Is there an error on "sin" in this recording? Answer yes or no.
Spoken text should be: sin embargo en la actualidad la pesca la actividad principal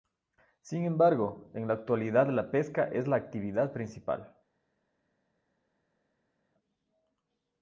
no